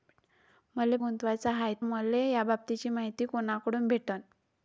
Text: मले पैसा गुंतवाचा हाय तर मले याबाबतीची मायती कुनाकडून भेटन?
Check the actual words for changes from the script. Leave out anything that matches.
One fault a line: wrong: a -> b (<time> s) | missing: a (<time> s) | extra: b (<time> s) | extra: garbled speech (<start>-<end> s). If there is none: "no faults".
missing: पैसा (1.0 s)
missing: तर (1.7 s)